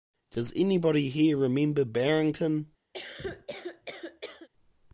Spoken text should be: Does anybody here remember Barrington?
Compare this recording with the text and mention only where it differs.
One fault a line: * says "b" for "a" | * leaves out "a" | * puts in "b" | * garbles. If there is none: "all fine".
all fine